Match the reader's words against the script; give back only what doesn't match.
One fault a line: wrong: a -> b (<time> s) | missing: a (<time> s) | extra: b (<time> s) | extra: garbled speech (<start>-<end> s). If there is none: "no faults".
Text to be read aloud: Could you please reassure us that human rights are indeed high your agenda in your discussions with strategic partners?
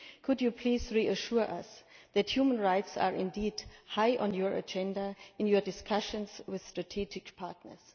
extra: on (4.2 s)